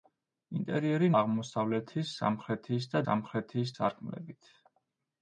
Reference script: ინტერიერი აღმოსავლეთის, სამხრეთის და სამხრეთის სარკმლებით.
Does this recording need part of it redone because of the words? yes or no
no